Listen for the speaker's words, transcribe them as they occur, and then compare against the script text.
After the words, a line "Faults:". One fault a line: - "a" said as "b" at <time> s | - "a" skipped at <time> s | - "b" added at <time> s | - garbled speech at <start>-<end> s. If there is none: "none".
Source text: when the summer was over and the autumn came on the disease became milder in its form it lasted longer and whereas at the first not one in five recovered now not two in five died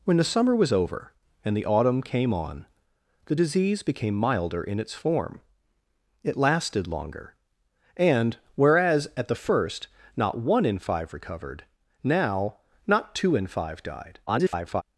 when the summer was over and the autumn came on the disease became milder in its form it lasted longer and whereas at the first not one in five recovered now not two in five died [garbled]
Faults:
- garbled speech at 14.3-14.8 s